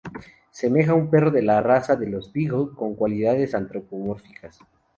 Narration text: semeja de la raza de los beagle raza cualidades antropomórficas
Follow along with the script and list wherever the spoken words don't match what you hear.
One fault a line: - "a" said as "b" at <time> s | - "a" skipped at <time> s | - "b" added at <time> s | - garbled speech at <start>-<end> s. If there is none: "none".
- "un perro" added at 0.9 s
- "raza" said as "con" at 2.7 s